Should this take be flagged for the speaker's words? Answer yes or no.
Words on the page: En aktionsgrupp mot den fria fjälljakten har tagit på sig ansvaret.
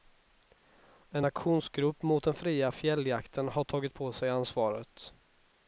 no